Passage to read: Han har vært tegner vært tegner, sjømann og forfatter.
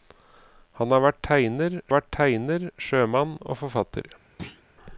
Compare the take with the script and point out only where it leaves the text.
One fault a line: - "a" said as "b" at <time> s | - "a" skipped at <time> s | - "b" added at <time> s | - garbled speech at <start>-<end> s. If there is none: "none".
none